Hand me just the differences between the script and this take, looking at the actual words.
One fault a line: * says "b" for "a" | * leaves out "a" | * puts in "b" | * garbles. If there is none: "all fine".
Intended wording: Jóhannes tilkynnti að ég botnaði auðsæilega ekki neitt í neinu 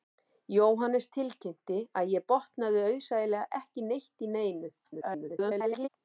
* garbles